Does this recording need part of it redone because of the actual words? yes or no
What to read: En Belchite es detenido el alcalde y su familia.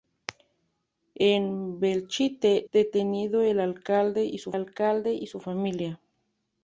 yes